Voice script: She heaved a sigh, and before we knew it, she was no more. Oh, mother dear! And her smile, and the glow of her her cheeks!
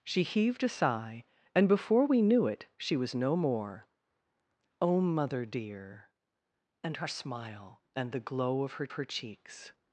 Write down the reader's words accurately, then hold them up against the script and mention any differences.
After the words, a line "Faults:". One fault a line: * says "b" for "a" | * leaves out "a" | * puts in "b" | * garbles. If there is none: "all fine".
She heaved a sigh, and before we knew it, she was no more. Oh, mother dear! And her smile, and the glow of her her cheeks!
Faults:
all fine